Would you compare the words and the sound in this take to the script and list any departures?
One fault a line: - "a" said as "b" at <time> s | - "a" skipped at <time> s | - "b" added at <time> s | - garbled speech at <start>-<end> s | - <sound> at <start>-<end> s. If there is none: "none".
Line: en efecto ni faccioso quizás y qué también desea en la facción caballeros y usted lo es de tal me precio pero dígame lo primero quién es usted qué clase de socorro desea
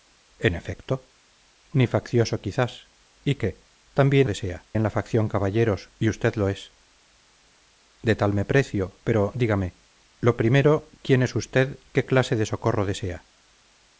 none